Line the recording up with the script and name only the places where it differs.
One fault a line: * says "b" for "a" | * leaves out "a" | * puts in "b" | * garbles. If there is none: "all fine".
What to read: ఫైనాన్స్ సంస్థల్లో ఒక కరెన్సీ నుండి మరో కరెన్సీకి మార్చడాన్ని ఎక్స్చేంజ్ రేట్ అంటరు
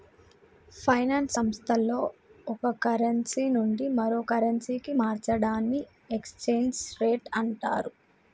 all fine